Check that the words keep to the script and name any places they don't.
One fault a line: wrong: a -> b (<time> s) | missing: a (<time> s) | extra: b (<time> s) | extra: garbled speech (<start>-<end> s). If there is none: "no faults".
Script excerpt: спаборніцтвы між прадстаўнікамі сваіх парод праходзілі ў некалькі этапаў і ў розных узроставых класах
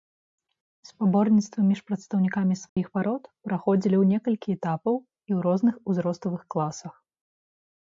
no faults